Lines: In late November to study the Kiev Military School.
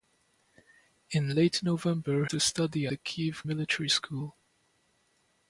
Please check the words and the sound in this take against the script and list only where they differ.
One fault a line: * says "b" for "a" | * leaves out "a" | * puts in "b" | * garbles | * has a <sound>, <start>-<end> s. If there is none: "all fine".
all fine